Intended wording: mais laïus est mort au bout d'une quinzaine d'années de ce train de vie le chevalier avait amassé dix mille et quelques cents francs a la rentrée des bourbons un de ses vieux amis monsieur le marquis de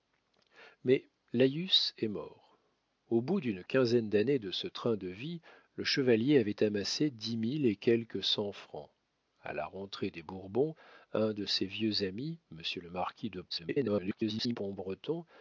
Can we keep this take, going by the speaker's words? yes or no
no